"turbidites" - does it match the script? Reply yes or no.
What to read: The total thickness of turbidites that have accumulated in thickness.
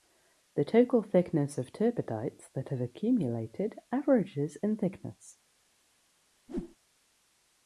yes